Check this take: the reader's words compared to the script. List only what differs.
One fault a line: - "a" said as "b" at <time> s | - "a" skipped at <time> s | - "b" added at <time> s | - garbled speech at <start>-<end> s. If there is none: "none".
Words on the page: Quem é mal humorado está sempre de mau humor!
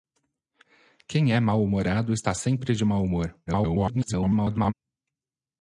- garbled speech at 3.5-4.7 s